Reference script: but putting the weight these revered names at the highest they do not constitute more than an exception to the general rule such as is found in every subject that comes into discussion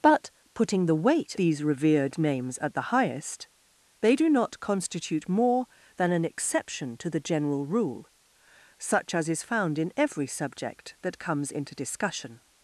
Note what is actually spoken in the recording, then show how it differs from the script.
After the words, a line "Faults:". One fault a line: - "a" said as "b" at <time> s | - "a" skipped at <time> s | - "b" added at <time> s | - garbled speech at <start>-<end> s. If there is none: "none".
but putting the weight these revered names at the highest they do not constitute more than an exception to the general rule such as is found in every subject that comes into discussion
Faults:
none